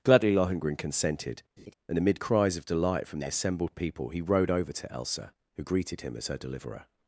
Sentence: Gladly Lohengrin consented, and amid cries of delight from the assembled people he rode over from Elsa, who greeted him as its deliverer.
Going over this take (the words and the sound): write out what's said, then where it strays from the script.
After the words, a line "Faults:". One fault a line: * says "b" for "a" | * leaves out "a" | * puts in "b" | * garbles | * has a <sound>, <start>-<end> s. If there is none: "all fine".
Gladly Lohengrin consented, and amid cries of delight from the assembled people he rode over to Elsa, who greeted him as her deliverer.
Faults:
* has a laugh, 1.6-1.7 s
* says "to" for "from"
* says "her" for "its"